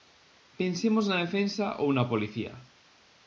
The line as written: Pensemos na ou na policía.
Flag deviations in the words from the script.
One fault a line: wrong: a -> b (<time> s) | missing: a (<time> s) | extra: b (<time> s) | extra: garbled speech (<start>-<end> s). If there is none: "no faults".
extra: defensa (1.2 s)